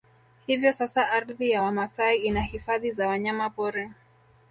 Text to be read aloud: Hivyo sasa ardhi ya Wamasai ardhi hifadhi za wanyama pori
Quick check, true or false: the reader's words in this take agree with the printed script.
false